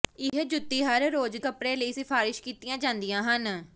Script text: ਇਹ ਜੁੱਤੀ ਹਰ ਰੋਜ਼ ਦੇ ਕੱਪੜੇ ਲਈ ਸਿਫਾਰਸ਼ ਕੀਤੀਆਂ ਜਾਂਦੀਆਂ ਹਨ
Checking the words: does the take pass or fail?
fail